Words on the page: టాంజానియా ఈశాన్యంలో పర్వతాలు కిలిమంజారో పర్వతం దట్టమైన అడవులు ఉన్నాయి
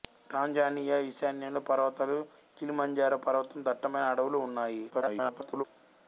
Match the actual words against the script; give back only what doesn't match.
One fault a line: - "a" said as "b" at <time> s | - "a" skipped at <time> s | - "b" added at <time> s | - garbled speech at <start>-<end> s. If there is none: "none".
- garbled speech at 4.9-5.6 s